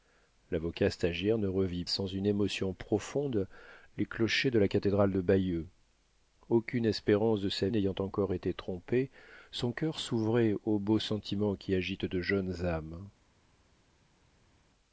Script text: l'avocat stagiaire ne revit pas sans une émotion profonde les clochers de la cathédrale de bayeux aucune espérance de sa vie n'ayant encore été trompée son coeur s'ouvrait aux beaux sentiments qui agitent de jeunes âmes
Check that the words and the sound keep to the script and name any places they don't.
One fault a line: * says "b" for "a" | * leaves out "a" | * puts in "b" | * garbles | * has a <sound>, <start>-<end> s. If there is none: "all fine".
* leaves out "pas"
* leaves out "vie"